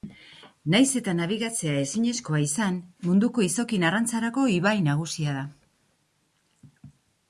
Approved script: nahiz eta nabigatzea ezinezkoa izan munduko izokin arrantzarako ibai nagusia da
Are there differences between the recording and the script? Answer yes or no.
no